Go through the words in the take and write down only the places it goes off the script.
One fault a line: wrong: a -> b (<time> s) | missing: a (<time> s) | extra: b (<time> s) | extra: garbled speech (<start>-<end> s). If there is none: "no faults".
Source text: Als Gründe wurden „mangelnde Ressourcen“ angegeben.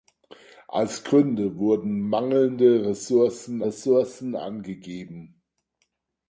extra: Ressourcen (3.6 s)